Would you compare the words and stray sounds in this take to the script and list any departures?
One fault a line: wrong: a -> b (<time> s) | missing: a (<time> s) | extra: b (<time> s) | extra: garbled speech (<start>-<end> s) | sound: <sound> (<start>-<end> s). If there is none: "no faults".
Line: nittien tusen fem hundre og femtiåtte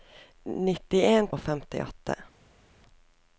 missing: tusen fem hundre (1.3 s)